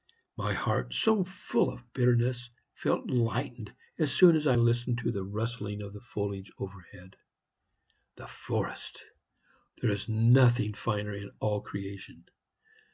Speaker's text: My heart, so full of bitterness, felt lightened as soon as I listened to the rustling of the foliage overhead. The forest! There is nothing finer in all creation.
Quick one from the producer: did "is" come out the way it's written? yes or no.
yes